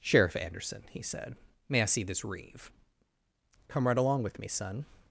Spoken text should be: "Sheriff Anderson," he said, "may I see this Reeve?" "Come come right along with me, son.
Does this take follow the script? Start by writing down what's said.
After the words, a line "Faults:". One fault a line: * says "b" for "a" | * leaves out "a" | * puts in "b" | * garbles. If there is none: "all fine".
"Sheriff Anderson," he said, "may I see this Reeve?" "Come right along with me, son.
Faults:
* leaves out "come"